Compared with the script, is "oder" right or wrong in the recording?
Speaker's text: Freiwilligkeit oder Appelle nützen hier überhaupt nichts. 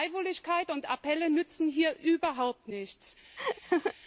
wrong